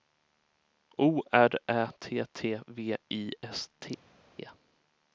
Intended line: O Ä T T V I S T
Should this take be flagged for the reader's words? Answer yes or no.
yes